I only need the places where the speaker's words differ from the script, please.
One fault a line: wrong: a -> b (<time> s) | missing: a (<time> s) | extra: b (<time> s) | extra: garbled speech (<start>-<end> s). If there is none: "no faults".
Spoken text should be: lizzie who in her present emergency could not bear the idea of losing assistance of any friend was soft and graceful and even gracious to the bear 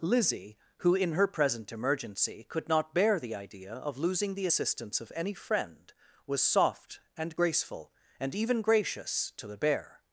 extra: the (4.3 s)